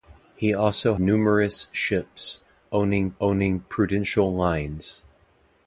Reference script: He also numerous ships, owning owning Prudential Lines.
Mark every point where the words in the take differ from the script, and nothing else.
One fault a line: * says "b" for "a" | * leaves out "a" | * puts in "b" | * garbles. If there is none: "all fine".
all fine